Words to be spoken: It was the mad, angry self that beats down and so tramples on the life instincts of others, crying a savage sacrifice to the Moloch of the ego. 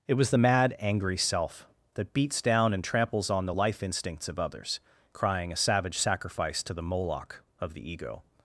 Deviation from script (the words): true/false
true